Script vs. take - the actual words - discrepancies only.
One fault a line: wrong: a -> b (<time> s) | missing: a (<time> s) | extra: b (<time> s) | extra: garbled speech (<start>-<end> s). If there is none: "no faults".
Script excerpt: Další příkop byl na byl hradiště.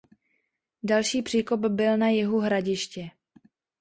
wrong: byl -> jihu (2.1 s)